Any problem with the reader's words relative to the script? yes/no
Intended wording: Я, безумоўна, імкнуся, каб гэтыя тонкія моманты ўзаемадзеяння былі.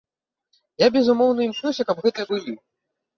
yes